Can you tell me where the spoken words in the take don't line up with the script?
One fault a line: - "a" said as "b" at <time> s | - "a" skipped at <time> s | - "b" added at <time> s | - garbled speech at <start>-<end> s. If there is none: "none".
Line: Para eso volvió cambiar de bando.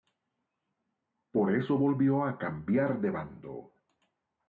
- "Para" said as "Por" at 1.3 s
- "a" added at 2.2 s